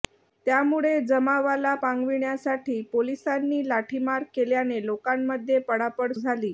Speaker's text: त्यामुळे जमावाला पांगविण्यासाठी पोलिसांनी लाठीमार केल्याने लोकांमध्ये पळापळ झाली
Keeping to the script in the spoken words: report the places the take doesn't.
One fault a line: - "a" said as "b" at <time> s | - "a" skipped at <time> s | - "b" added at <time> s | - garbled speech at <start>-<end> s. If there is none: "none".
none